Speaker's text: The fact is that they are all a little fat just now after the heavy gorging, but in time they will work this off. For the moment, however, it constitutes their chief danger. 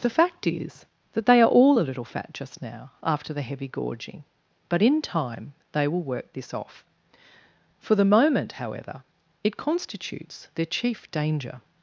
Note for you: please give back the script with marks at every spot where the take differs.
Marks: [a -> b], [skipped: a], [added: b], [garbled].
The fact is that they are all a little fat just now after the heavy gorging, but in time they will work this off. For the moment, however, it constitutes their chief danger.